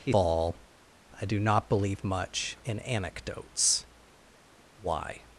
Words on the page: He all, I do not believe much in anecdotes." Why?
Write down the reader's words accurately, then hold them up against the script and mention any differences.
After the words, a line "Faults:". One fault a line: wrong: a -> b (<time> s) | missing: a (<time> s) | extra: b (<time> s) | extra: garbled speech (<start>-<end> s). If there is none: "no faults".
He all, I do not believe much in anecdotes." Why?
Faults:
no faults